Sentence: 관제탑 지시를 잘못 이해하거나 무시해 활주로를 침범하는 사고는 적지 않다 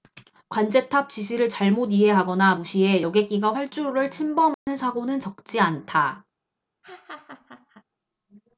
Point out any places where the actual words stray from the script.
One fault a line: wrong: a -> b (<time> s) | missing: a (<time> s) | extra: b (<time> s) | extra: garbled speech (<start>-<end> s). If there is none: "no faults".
extra: 여객기가 (3.0 s)